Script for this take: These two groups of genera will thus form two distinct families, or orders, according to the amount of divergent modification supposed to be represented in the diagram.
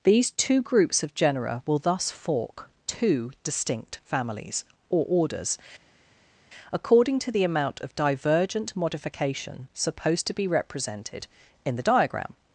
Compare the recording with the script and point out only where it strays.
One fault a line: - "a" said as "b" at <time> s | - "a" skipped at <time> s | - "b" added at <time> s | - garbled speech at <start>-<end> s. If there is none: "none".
- "form" said as "fork" at 2.1 s